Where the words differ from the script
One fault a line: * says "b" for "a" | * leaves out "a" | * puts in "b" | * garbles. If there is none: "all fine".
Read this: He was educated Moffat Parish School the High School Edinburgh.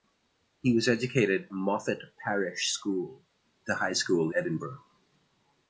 all fine